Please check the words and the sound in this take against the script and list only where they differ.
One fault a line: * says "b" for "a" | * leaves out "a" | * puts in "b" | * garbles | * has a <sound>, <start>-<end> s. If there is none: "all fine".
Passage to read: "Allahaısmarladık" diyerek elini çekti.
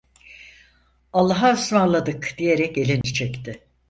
* has a dropout, 3.0-3.0 s